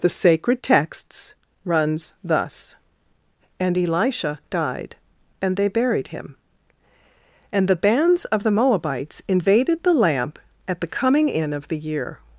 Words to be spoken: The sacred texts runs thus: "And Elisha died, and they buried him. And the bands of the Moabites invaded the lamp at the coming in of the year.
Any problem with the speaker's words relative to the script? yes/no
no